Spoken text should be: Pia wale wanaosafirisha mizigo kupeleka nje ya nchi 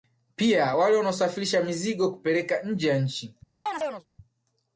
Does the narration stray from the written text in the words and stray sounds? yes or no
yes